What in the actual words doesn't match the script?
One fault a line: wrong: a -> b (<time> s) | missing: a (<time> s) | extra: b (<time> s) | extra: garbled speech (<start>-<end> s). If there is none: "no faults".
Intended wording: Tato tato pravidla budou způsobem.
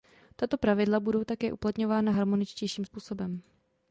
missing: tato (0.6 s)
extra: také uplatňována harmoničtějším (1.2 s)